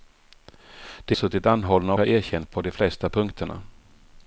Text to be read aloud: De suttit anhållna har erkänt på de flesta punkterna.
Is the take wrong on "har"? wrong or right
right